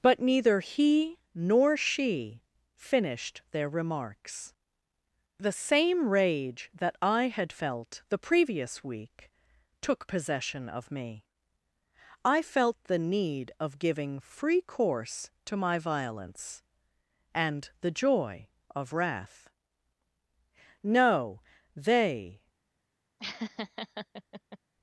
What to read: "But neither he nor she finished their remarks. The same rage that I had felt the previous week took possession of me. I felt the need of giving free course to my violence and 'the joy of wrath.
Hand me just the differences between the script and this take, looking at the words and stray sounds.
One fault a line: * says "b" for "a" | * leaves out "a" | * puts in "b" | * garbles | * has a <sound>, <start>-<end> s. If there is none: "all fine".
* puts in "No they"
* has a laugh, 23.2-24.6 s